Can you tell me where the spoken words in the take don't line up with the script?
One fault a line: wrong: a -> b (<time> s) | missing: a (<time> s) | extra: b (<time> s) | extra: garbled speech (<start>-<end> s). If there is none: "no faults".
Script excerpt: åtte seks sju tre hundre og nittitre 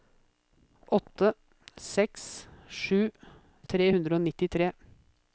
no faults